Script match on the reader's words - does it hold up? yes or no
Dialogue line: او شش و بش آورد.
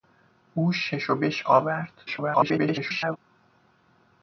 no